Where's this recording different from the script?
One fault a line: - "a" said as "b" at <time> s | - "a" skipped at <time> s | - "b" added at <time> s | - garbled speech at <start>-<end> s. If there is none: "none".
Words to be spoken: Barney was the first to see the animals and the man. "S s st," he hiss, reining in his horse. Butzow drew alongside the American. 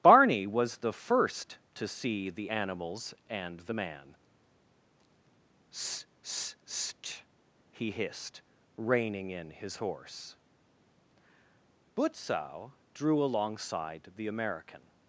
- "hiss" said as "hissed" at 7.9 s